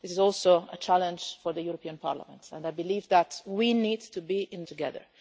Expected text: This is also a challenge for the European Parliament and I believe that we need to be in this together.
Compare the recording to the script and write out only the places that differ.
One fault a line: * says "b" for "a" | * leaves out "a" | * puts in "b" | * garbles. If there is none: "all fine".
* leaves out "this"